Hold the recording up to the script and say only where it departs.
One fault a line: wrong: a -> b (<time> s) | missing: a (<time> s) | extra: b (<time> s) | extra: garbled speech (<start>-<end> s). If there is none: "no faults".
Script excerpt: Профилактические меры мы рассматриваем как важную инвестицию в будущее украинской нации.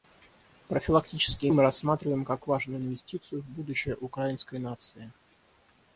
missing: меры (1.5 s)